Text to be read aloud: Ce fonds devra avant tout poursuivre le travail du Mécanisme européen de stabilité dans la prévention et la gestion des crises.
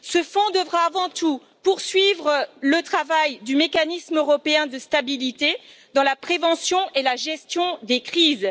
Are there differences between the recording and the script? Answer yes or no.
no